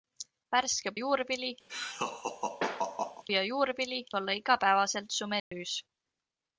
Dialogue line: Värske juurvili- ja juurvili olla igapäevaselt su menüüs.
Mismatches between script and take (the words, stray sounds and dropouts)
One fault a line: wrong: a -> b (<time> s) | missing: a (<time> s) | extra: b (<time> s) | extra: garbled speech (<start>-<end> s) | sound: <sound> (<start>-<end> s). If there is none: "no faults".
sound: laugh (1.7-3.2 s)
sound: dropout (5.4-5.5 s)